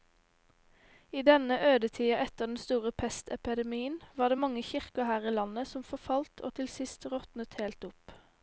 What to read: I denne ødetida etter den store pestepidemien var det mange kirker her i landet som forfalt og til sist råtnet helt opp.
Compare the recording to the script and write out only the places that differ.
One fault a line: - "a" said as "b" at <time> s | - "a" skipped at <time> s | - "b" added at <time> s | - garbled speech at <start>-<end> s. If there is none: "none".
none